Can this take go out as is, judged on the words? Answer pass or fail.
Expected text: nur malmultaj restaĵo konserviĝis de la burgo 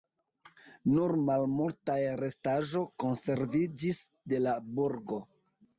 pass